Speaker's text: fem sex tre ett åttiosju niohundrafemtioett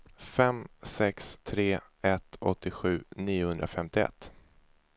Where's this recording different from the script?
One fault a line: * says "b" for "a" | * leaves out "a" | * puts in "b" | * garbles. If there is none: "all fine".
all fine